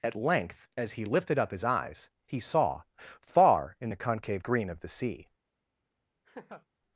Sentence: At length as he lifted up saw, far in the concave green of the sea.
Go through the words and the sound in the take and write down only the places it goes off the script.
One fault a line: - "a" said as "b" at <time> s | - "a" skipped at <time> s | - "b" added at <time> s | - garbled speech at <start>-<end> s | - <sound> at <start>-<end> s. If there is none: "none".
- "his eyes He" added at 1.5 s
- laugh at 6.2-6.7 s